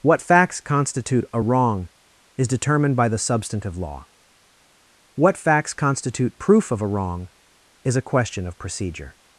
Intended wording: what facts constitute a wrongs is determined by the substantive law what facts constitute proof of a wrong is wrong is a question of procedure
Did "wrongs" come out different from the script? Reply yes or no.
yes